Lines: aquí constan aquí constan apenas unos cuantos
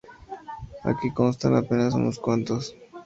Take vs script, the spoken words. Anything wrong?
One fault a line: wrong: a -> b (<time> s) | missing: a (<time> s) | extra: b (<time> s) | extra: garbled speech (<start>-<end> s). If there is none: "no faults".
missing: aquí constan (1.6 s)